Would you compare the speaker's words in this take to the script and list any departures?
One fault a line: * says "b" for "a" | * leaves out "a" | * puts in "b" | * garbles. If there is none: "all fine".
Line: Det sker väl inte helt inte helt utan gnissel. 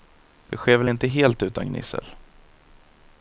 * leaves out "inte helt"